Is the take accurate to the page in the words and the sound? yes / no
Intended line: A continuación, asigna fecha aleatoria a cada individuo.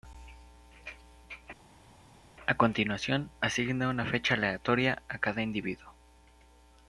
no